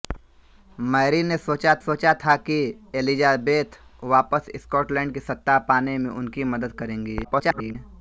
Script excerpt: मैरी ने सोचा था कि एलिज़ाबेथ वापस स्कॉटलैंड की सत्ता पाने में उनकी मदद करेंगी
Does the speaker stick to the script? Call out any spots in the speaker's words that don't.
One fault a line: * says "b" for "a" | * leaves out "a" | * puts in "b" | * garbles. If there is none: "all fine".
* puts in "सोचा"
* garbles